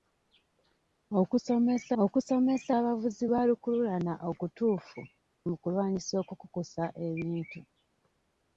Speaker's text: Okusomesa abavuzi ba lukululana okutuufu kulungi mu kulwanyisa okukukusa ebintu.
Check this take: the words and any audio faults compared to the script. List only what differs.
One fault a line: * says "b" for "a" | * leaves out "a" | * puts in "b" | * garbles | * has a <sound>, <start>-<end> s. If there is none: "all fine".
* puts in "okusomesa"
* leaves out "kulungi"